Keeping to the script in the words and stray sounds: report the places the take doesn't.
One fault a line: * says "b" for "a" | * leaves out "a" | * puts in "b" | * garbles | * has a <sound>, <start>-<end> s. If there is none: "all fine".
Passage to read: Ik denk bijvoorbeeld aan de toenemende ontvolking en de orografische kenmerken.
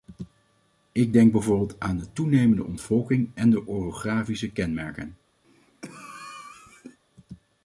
* has a cough, 5.4-7.0 s